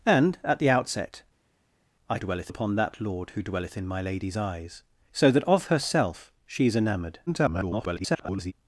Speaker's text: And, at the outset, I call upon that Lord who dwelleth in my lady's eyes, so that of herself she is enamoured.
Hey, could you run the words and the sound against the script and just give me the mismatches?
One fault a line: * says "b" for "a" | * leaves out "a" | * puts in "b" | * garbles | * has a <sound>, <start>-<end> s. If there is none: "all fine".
* says "dwelleth" for "call"
* garbles